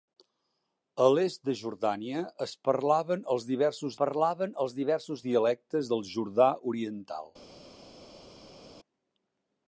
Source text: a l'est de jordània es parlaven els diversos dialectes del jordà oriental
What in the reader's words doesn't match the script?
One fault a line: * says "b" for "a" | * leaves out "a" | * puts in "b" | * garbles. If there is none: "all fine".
* puts in "parlaven els diversos"